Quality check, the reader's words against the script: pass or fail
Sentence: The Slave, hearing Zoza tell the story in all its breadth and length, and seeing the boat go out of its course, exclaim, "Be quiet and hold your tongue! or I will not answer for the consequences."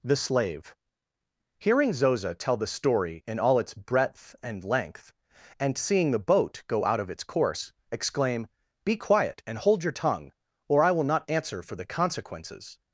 pass